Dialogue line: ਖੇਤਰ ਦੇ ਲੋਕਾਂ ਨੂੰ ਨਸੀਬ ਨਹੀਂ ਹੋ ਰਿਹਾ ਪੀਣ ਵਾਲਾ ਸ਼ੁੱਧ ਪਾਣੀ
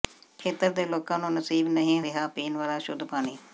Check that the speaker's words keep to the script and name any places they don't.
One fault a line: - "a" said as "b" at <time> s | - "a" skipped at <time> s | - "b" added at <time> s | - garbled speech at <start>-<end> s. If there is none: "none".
- "ਹੋ" skipped at 2.0 s